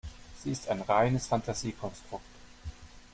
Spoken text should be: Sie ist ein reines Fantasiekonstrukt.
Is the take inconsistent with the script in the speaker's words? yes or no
no